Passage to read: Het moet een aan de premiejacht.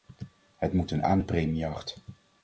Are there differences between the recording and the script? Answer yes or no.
no